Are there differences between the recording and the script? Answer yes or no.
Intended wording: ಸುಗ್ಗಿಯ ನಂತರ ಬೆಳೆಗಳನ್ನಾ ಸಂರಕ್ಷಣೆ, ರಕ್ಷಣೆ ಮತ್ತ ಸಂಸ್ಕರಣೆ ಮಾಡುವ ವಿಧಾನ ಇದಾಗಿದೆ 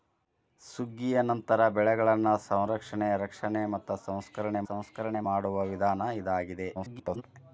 yes